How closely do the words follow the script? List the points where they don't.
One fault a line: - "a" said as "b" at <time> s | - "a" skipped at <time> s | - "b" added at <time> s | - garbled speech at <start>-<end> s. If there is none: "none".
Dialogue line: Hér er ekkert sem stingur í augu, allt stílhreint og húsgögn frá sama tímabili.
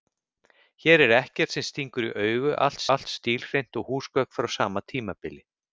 - "allt" added at 3.0 s